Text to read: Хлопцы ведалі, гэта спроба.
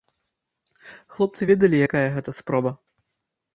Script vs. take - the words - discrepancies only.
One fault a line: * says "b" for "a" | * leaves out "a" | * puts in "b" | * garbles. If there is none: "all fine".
* puts in "якая"